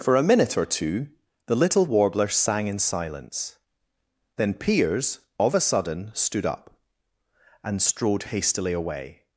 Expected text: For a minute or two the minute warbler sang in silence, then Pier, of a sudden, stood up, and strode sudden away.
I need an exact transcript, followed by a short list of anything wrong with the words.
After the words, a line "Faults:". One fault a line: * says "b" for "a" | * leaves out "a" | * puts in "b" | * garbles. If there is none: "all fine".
For a minute or two the little warbler sang in silence, then Piers, of a sudden, stood up, and strode hastily away.
Faults:
* says "little" for "minute"
* says "Piers" for "Pier"
* says "hastily" for "sudden"